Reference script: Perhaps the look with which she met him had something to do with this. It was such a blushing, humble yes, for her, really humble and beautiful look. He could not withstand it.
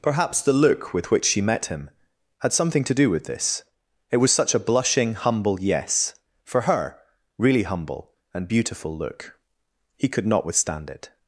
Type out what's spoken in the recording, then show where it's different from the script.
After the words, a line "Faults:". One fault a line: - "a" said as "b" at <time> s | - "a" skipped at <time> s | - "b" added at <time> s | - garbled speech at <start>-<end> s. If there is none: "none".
Perhaps the look with which she met him had something to do with this. It was such a blushing, humble yes, for her, really humble and beautiful look. He could not withstand it.
Faults:
none